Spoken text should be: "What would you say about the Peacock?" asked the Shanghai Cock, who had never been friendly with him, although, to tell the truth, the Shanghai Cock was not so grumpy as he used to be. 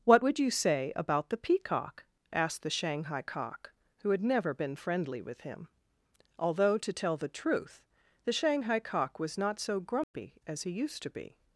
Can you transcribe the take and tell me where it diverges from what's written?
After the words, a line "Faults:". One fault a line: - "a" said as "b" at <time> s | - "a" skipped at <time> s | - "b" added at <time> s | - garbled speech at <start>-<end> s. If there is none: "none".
"What would you say about the Peacock?" asked the Shanghai Cock, who had never been friendly with him, although, to tell the truth, the Shanghai Cock was not so grumpy as he used to be.
Faults:
none